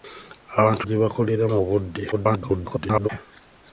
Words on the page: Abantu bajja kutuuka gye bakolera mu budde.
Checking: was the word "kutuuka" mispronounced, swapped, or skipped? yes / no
yes